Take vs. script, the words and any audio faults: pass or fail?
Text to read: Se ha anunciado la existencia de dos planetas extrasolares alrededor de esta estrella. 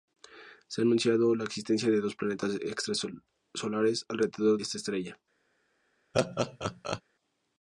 fail